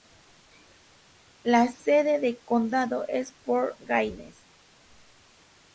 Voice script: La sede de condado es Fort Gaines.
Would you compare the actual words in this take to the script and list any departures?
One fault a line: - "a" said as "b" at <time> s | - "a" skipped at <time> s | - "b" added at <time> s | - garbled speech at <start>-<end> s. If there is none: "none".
none